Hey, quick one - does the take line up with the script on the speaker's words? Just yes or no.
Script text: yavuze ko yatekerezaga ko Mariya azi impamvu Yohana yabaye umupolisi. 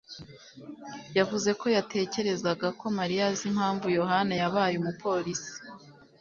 yes